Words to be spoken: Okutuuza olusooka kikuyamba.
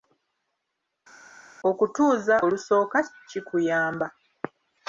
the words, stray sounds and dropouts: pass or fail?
pass